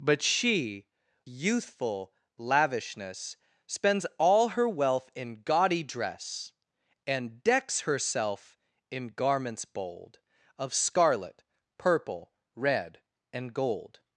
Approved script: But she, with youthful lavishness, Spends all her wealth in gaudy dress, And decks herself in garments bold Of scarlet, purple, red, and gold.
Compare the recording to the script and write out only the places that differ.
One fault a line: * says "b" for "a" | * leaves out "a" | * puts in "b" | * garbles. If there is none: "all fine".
* leaves out "with"